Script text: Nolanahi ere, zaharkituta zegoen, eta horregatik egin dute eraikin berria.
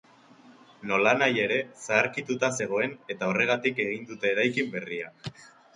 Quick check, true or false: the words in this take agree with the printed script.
true